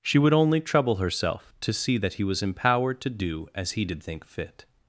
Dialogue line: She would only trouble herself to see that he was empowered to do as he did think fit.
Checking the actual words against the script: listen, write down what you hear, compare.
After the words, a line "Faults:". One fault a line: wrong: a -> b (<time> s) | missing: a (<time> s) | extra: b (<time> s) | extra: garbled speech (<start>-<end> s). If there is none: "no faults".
She would only trouble herself to see that he was empowered to do as he did think fit.
Faults:
no faults